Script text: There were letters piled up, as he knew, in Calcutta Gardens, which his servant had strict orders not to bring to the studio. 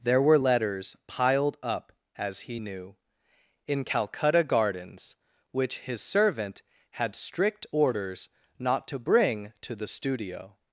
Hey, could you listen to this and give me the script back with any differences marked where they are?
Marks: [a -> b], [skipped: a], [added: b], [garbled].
There were letters piled up, as he knew, in Calcutta Gardens, which his servant had strict orders not to bring to the studio.